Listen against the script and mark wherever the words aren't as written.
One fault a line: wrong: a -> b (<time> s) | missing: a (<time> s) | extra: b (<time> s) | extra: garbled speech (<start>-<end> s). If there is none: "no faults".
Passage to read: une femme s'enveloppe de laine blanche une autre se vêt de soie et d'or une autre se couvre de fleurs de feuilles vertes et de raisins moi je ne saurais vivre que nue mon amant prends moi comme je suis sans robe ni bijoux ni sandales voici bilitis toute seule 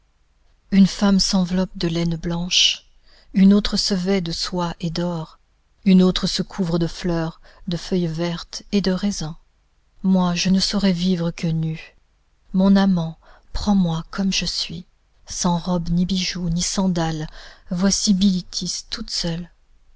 no faults